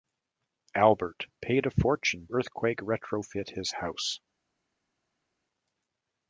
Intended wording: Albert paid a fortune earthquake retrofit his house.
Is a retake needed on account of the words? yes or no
no